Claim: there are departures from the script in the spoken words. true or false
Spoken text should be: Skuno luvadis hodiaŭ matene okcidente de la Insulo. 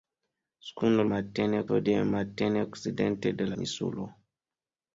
true